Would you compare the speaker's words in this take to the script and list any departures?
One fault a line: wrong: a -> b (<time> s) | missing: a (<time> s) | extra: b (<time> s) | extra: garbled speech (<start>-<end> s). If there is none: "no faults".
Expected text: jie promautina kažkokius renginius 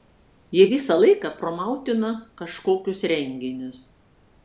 extra: visą laiką (0.7 s)